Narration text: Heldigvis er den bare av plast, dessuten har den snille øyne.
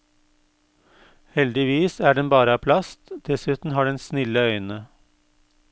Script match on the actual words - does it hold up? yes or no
yes